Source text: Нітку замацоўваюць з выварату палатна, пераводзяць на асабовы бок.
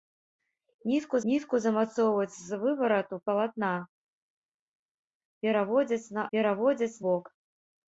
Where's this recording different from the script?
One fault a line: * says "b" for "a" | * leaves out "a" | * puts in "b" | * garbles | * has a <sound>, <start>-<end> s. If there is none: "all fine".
* puts in "нітку"
* says "пераводзяць" for "асабовы"